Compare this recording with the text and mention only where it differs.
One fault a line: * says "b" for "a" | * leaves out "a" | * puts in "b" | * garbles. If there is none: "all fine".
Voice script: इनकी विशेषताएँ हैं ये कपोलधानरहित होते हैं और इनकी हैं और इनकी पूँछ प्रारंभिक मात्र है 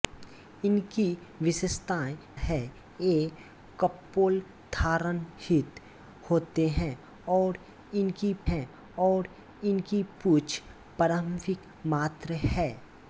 all fine